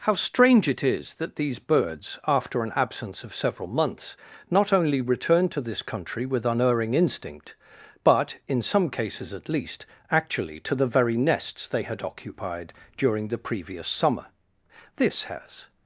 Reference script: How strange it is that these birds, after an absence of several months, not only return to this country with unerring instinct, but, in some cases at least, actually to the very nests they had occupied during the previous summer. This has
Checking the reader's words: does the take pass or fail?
pass